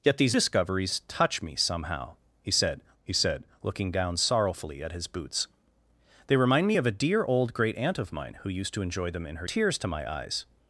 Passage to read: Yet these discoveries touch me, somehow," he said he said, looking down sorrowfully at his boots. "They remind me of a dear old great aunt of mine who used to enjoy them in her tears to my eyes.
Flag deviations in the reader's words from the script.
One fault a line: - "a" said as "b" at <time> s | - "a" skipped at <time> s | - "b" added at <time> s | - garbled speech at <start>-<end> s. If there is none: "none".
none